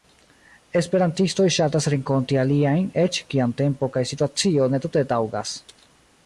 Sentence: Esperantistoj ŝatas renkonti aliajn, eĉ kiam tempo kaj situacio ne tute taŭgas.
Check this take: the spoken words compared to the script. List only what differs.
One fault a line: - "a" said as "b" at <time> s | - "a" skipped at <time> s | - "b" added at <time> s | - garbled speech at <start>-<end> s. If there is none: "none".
none